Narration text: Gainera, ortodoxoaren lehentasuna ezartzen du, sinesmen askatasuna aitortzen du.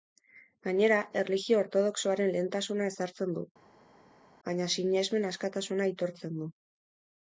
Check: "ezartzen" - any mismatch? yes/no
no